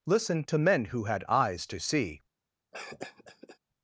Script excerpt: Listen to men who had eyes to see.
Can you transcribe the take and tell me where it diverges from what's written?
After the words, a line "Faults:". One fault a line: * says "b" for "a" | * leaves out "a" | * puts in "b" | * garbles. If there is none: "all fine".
Listen to men who had eyes to see.
Faults:
all fine